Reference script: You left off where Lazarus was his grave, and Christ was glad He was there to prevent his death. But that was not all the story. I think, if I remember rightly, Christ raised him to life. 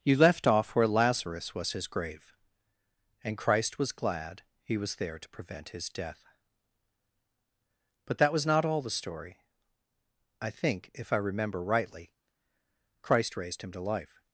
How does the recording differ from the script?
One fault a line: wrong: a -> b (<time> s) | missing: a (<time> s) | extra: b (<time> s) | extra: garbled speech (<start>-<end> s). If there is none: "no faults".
no faults